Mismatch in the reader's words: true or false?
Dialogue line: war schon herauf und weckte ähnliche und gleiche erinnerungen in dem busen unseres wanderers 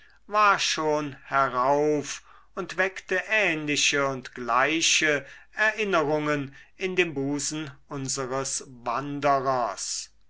false